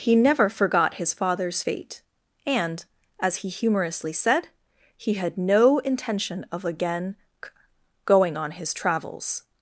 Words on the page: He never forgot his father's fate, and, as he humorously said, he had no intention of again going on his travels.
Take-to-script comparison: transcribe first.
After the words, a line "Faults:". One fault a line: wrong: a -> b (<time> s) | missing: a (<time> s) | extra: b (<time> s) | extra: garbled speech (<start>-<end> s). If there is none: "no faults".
He never forgot his father's fate, and, as he humorously said, he had no intention of again going on his travels.
Faults:
no faults